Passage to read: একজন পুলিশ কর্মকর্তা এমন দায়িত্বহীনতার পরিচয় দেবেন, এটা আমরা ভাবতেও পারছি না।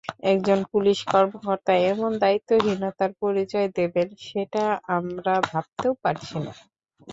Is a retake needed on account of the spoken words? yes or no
yes